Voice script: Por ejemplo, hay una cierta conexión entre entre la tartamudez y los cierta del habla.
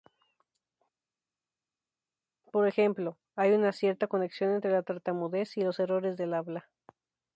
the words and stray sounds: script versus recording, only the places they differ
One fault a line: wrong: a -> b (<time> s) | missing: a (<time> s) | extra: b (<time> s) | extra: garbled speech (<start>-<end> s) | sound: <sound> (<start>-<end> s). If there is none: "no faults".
missing: entre (4.7 s)
wrong: cierta -> errores (5.8 s)